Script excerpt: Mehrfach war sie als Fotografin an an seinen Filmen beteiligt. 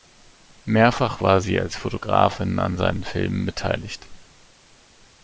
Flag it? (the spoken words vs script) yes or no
yes